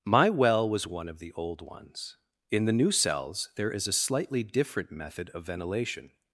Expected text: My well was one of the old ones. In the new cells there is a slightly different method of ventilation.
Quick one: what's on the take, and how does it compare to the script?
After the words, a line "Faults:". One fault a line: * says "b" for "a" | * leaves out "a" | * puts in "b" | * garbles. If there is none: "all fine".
My well was one of the old ones. In the new cells there is a slightly different method of ventilation.
Faults:
all fine